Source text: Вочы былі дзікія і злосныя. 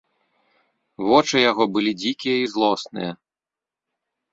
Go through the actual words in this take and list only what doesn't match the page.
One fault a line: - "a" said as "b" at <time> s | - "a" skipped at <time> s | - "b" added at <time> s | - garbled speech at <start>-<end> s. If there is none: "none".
- "яго" added at 1.5 s